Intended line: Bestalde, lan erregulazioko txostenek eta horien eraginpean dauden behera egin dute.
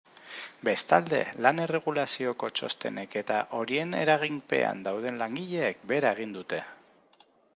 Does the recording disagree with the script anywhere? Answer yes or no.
yes